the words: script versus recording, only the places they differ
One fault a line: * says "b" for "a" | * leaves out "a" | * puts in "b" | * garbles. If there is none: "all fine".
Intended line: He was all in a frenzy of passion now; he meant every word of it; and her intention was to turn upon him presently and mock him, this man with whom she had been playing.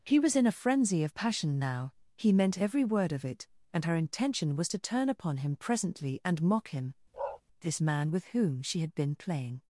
* leaves out "all"